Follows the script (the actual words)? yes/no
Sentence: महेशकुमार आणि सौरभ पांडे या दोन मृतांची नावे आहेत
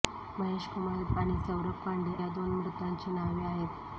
yes